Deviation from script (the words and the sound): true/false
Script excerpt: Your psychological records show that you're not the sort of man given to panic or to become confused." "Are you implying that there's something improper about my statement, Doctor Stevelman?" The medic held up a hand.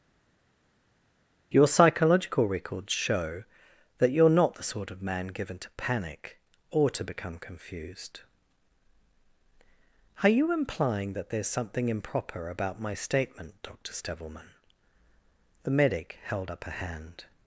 false